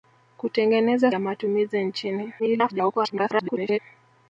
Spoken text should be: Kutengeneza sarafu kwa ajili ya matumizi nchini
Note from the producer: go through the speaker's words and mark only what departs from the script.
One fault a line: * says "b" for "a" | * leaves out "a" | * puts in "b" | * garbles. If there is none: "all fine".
* leaves out "sarafu kwa ajili"
* garbles